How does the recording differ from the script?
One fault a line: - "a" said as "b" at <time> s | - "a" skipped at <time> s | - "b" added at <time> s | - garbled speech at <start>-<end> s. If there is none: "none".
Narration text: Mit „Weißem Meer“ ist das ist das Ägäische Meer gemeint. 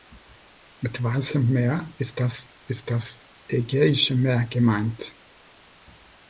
none